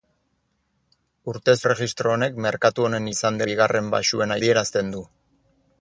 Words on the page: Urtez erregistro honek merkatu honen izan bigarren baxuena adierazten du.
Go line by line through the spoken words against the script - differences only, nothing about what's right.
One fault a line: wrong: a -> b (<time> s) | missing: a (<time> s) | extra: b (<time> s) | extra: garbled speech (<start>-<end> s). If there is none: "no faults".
no faults